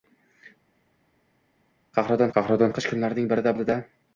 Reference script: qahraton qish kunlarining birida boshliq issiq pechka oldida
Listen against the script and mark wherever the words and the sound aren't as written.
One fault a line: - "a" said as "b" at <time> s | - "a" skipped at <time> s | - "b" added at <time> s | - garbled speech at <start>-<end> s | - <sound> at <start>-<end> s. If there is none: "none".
- "qahraton" added at 2.4 s
- "boshliq issiq pechka" skipped at 3.6 s